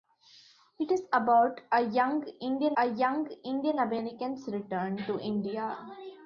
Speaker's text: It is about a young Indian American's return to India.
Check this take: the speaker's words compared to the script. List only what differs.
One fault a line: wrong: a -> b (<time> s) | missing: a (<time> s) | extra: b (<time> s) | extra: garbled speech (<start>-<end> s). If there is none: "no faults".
extra: a young Indian (2.8 s)